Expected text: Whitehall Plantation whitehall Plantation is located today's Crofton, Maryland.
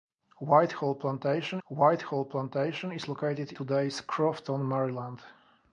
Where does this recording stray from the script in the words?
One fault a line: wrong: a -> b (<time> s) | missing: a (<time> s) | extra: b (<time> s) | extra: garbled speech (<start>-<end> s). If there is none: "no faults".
no faults